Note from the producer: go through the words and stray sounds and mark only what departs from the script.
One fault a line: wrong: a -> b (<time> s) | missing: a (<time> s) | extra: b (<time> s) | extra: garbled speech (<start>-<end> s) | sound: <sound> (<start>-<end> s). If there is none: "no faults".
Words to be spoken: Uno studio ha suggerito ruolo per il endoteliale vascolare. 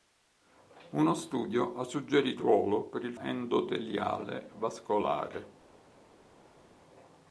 no faults